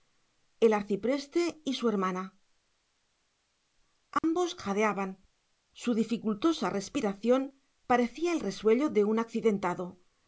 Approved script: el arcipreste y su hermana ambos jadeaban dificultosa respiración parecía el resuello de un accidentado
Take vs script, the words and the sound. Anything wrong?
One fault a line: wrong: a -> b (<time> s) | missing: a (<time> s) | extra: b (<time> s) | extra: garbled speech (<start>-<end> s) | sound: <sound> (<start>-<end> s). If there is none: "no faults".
sound: dropout (4.2-4.2 s)
extra: su (5.7 s)